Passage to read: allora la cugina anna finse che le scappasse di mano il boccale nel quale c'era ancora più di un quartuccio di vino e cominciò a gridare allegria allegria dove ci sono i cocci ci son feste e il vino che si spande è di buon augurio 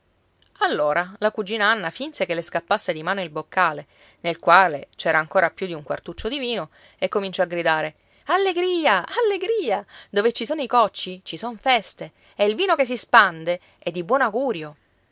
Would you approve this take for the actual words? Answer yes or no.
yes